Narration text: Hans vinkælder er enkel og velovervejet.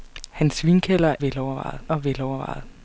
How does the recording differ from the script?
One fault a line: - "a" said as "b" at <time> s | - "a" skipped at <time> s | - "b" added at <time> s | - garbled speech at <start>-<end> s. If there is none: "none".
- "enkel" said as "velovervejet" at 1.2 s